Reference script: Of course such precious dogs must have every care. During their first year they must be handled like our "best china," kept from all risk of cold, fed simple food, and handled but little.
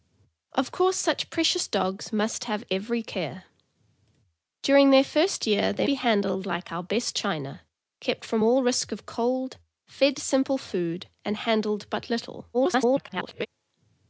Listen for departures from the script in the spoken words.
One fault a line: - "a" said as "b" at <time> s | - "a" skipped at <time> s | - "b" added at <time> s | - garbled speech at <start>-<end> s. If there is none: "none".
- "must" skipped at 5.9 s
- garbled speech at 12.5-13.5 s